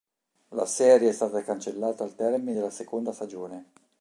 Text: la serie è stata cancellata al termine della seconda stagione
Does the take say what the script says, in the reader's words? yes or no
yes